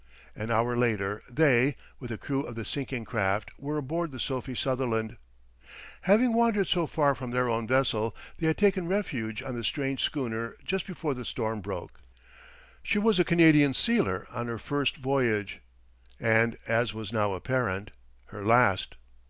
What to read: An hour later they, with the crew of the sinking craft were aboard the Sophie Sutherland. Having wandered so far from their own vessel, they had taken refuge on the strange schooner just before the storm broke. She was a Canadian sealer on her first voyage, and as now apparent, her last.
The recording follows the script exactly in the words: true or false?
false